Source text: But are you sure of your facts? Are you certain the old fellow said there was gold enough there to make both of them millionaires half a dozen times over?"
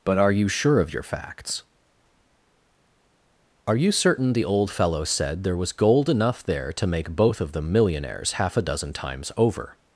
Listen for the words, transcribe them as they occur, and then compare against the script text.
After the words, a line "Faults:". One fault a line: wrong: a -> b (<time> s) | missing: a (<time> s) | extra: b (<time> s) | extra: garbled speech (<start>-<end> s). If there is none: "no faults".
But are you sure of your facts? Are you certain the old fellow said there was gold enough there to make both of them millionaires half a dozen times over?"
Faults:
no faults